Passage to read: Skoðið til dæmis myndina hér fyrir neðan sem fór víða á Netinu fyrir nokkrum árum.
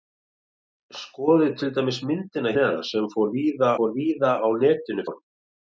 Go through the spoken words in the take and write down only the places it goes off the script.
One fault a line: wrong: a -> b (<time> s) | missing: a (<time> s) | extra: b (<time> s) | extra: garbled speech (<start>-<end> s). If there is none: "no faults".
missing: hér fyrir (2.5 s)
extra: fór víða (3.8 s)
missing: fyrir nokkrum (5.1 s)